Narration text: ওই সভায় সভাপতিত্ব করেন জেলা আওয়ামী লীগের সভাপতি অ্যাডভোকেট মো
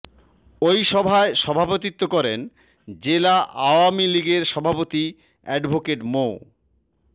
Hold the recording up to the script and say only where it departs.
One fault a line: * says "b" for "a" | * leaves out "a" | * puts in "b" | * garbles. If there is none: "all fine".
all fine